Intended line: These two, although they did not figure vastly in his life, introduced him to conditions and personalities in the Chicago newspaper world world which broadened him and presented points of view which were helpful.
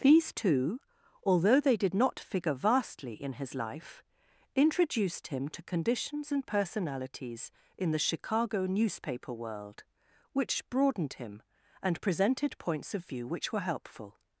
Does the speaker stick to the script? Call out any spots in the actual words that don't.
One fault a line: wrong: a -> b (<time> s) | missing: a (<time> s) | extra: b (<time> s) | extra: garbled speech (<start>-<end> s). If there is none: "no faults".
missing: world (9.8 s)